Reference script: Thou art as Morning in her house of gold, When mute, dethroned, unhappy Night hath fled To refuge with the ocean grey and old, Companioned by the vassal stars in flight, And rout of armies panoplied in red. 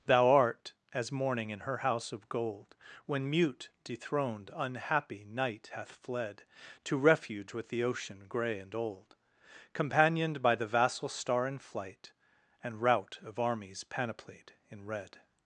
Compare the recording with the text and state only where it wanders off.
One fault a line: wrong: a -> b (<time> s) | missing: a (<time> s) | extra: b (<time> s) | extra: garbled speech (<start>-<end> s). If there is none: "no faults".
wrong: stars -> star (11.1 s)